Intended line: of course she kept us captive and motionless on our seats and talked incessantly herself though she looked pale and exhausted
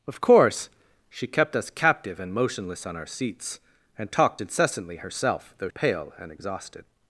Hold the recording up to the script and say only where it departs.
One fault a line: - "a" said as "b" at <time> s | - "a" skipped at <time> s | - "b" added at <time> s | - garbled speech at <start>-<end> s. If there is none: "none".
- "she looked" skipped at 5.7 s